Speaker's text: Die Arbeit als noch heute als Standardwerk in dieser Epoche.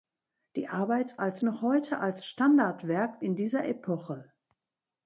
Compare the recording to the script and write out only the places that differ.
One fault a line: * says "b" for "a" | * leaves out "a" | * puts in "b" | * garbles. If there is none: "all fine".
all fine